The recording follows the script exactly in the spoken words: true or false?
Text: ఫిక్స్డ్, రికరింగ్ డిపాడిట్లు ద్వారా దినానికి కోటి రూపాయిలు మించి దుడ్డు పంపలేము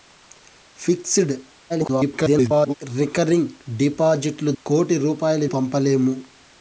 false